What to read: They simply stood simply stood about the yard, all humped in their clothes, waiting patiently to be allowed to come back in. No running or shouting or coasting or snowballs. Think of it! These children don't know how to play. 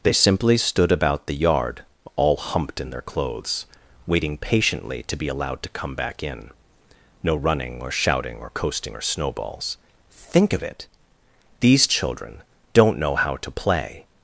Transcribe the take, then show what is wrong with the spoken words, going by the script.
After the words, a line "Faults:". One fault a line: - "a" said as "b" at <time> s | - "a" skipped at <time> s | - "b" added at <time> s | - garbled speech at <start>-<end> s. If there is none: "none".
They simply stood about the yard, all humped in their clothes, waiting patiently to be allowed to come back in. No running or shouting or coasting or snowballs. Think of it! These children don't know how to play.
Faults:
- "simply stood" skipped at 0.9 s